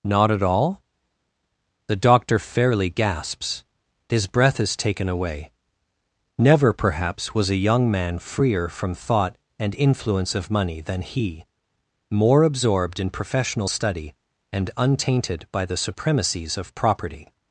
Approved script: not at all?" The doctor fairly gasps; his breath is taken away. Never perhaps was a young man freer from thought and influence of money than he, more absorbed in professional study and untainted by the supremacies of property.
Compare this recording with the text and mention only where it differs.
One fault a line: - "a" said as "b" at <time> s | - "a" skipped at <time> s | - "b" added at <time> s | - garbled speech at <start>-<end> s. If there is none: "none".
none